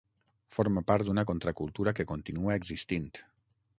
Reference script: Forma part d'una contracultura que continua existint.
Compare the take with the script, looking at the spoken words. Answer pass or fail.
pass